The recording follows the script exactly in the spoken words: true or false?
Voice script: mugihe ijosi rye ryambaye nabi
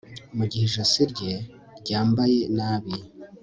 true